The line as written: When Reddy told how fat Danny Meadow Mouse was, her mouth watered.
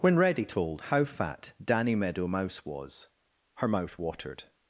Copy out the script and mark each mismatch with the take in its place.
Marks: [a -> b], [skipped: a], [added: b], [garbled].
When Reddy told how fat Danny Meadow Mouse was, her mouth watered.